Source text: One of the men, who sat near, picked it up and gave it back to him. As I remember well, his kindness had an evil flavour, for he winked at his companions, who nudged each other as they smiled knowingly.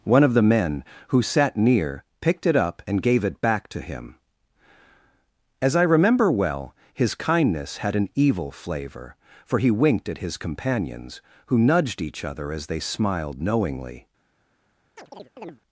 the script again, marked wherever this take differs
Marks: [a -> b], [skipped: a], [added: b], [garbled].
One of the men, who sat near, picked it up and gave it back to him. As I remember well, his kindness had an evil flavour, for he winked at his companions, who nudged each other as they smiled knowingly.